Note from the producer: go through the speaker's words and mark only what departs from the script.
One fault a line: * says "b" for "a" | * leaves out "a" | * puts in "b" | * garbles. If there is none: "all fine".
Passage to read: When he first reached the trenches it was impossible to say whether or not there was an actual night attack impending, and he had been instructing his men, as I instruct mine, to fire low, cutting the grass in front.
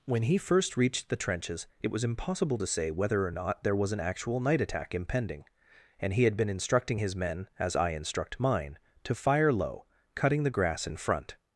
all fine